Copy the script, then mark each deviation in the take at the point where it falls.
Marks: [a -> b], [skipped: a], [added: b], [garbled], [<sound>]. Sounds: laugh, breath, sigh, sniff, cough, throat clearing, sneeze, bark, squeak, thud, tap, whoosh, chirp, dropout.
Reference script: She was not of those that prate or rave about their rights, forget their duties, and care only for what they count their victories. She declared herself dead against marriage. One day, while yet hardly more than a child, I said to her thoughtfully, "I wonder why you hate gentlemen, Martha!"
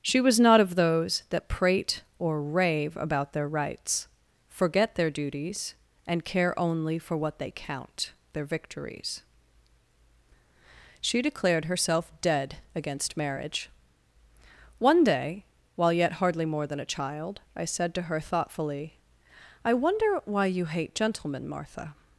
She was not of those that prate or rave about their rights, forget their duties, and care only for what they count their victories. She declared herself dead against marriage. One day, while yet hardly more than a child, I said to her thoughtfully, "I wonder why you hate gentlemen, Martha!"